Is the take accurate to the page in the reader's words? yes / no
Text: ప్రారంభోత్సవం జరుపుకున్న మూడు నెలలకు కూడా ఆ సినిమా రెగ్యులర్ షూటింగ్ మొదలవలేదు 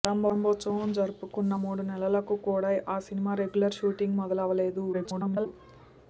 no